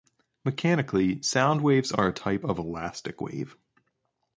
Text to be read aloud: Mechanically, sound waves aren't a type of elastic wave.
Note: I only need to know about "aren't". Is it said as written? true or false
false